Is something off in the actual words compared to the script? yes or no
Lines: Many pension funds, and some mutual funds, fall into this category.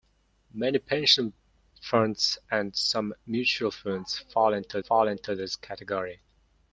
yes